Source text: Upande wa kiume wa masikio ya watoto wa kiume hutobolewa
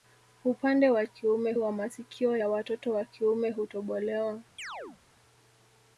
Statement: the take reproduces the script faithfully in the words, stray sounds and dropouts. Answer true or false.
false